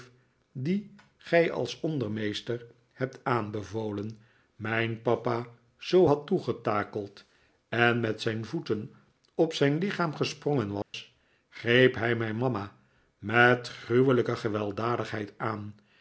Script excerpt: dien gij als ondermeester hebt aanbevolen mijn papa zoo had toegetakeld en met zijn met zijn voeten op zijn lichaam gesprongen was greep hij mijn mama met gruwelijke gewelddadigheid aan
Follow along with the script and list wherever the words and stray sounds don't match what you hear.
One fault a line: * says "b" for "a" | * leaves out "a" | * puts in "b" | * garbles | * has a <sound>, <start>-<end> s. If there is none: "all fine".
* leaves out "met zijn"
* has a dropout, 10.8-10.9 s